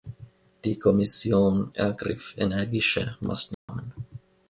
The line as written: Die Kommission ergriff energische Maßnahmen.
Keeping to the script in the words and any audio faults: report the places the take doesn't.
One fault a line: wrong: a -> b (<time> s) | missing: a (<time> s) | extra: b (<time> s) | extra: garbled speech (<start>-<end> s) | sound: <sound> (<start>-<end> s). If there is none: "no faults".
sound: dropout (3.5-3.7 s)